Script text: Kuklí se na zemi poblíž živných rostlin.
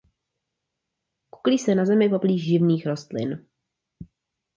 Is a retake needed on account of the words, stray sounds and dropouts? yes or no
no